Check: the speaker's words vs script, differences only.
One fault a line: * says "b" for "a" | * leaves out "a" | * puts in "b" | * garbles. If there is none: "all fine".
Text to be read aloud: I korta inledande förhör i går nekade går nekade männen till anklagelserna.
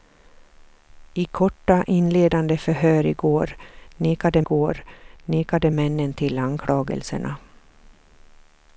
all fine